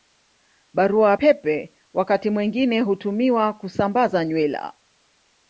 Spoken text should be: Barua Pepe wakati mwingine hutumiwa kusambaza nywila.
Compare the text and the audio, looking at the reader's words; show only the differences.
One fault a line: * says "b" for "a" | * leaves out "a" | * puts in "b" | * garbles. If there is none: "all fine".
all fine